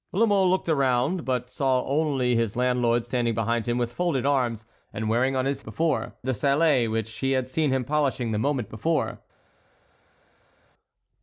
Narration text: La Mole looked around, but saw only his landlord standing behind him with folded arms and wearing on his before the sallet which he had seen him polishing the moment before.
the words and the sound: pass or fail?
pass